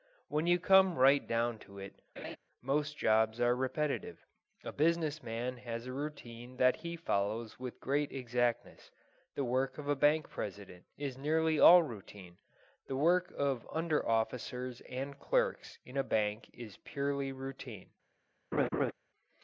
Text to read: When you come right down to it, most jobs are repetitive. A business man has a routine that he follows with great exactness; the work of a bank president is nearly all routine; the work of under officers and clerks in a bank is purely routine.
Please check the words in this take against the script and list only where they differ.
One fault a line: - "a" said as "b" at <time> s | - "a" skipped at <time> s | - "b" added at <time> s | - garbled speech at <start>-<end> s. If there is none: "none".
none